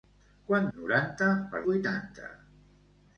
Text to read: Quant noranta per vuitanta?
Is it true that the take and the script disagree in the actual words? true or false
false